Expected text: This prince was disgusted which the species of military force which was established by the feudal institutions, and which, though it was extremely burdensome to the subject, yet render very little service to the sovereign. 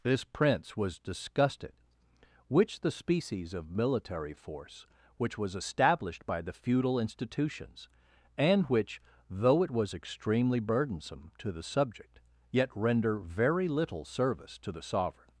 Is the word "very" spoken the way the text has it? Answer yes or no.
yes